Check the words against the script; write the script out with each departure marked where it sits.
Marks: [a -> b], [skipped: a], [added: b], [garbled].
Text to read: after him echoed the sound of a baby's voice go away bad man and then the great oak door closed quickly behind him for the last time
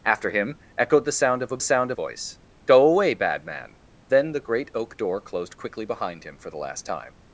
after him echoed the sound of a [baby's -> sound] voice go away bad man [skipped: and] then the great oak door closed quickly behind him for the last time